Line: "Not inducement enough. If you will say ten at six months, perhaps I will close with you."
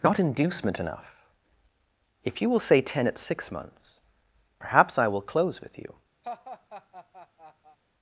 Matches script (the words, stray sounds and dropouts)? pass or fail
fail